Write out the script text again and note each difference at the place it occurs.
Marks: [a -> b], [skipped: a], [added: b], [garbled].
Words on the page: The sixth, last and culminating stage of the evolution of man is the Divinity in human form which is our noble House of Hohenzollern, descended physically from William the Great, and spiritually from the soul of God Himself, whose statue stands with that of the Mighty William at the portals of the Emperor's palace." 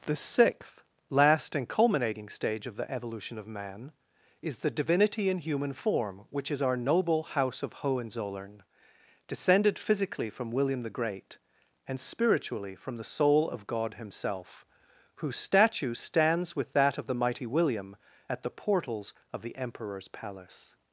The sixth, last and culminating stage of the evolution of man is the Divinity in human form which is our noble House of Hohenzollern, descended physically from William the Great, and spiritually from the soul of God Himself, whose statue stands with that of the Mighty William at the portals of the Emperor's palace."